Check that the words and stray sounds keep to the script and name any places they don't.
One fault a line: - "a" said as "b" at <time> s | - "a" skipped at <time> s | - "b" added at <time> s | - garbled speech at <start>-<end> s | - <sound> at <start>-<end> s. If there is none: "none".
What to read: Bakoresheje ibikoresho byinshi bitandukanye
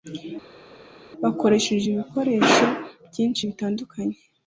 none